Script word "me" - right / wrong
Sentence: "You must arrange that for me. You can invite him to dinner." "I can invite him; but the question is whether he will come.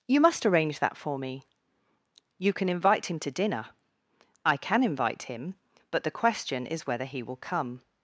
right